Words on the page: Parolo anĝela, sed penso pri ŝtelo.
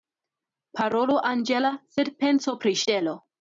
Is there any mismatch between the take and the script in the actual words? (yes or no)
no